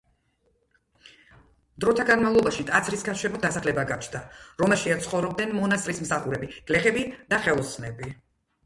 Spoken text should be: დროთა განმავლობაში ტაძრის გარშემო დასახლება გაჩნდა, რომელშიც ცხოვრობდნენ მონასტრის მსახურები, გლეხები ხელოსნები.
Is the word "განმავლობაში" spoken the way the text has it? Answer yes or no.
yes